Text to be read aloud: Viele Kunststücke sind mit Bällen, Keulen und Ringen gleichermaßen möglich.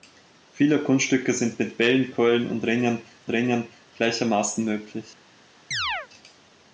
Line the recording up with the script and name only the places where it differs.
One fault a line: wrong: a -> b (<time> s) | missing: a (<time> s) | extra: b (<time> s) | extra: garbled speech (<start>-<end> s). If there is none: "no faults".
extra: Ringen (3.3 s)